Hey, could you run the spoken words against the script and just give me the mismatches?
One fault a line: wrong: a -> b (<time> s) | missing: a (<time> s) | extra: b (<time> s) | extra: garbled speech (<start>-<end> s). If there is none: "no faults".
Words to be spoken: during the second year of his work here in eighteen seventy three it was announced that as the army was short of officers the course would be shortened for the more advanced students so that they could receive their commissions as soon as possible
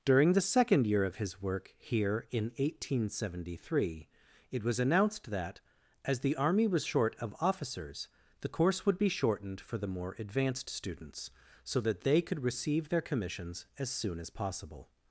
no faults